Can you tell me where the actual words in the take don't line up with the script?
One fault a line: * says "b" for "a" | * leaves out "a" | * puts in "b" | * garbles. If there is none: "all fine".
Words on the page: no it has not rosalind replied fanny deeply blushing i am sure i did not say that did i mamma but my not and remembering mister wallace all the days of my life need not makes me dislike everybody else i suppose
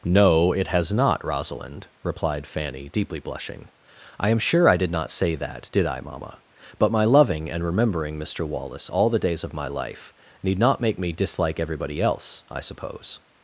* says "loving" for "not"
* says "make" for "makes"